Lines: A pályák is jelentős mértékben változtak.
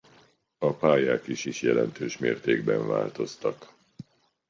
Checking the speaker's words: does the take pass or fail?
fail